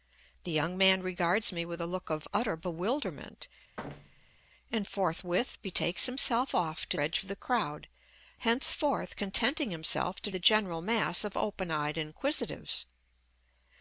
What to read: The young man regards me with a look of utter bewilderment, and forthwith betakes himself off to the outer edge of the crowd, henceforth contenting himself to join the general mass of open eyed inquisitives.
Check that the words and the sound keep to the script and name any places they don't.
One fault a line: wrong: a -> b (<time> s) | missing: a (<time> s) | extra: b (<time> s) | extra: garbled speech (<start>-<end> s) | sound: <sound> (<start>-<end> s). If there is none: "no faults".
sound: thud (3.8-4.4 s)
missing: the outer (7.0 s)
missing: join (10.3 s)